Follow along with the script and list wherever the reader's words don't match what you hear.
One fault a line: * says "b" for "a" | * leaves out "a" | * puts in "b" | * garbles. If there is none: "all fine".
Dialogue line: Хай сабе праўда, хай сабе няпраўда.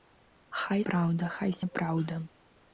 * leaves out "сабе"
* leaves out "сабе"